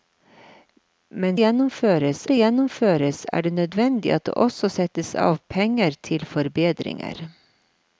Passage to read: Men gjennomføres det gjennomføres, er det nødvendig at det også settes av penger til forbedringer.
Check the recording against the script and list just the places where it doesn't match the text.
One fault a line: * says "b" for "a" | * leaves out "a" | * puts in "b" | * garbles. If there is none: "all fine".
all fine